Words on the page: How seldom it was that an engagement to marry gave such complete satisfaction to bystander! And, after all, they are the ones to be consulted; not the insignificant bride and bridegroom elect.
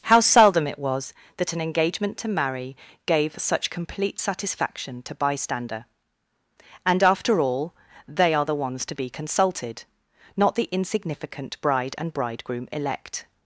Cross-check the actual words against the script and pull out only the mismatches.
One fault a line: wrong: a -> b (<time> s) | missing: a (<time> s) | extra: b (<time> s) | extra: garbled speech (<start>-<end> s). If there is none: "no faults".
no faults